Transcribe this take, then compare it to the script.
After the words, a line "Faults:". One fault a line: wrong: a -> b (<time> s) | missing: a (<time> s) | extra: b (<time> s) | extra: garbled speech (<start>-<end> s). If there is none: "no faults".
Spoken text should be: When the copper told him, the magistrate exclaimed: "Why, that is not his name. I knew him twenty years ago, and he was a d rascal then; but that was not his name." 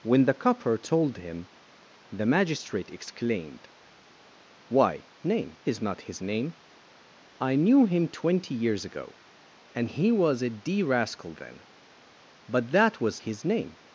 When the copper told him, the magistrate exclaimed: "Why, name is not his name. I knew him twenty years ago, and he was a d rascal then; but that was his name."
Faults:
wrong: that -> name (5.2 s)
missing: not (13.2 s)